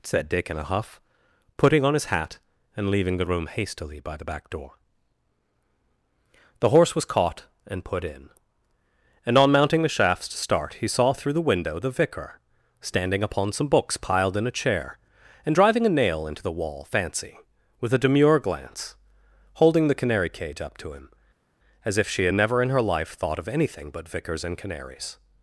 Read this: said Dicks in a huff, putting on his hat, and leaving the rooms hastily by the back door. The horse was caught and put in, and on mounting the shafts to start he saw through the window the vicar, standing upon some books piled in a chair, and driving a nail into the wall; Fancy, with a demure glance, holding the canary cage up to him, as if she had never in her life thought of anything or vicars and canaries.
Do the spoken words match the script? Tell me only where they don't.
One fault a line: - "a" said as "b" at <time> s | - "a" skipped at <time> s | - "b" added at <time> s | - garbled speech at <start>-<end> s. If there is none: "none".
- "Dicks" said as "Dick" at 0.3 s
- "rooms" said as "room" at 3.3 s
- "or" said as "but" at 23.9 s